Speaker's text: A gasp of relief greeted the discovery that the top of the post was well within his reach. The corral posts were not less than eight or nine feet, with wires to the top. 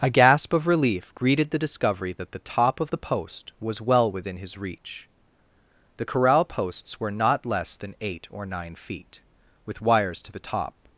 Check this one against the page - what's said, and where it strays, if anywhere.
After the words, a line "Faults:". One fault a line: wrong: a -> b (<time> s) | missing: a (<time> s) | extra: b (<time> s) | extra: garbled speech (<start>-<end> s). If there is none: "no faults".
A gasp of relief greeted the discovery that the top of the post was well within his reach. The corral posts were not less than eight or nine feet, with wires to the top.
Faults:
no faults